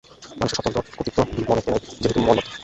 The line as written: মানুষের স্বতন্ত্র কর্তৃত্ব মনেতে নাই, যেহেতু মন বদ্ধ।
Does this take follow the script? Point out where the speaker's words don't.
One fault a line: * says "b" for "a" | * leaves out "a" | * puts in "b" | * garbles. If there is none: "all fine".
all fine